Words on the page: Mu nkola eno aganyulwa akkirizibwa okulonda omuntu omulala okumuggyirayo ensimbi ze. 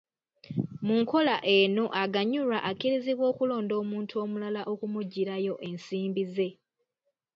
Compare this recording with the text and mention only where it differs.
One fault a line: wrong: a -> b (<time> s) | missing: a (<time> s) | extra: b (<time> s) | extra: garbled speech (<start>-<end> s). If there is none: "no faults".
no faults